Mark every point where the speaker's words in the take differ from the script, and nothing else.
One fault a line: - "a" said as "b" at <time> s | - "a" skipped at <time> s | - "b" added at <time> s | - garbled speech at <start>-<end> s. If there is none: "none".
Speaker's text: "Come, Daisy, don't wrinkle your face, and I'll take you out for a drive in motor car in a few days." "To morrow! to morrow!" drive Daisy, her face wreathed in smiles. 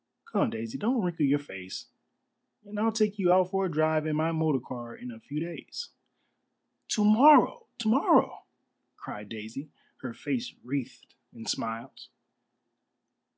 - "my" added at 4.1 s
- "drive" said as "cried" at 9.0 s